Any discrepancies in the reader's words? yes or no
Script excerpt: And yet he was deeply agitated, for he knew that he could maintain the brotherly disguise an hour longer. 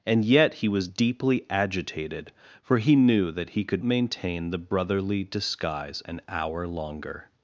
no